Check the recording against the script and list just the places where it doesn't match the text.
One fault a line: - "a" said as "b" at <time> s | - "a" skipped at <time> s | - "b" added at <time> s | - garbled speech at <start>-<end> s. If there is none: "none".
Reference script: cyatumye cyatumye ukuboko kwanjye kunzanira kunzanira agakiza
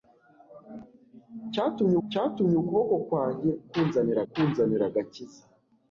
none